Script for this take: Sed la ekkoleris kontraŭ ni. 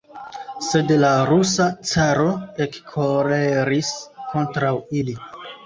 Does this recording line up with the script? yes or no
no